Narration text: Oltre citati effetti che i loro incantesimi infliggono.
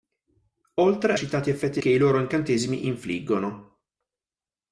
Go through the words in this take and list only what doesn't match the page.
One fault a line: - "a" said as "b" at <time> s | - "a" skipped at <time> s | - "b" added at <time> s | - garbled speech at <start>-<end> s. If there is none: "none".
none